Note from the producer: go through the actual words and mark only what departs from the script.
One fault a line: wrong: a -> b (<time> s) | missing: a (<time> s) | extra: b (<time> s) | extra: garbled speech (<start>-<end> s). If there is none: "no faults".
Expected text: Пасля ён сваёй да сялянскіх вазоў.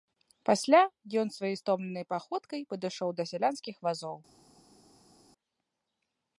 extra: стомленай паходкай падышоў (1.6 s)